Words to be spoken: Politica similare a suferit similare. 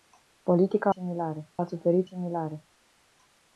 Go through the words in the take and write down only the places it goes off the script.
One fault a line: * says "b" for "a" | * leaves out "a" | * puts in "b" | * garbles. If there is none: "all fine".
all fine